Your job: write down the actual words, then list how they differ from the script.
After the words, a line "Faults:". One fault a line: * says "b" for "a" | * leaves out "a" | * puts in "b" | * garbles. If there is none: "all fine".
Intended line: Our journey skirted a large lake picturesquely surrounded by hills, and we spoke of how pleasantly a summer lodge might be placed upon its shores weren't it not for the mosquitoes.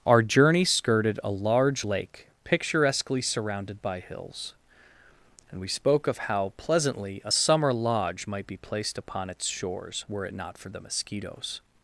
Our journey skirted a large lake picturesquely surrounded by hills, and we spoke of how pleasantly a summer lodge might be placed upon its shores were it not for the mosquitoes.
Faults:
* says "were" for "weren't"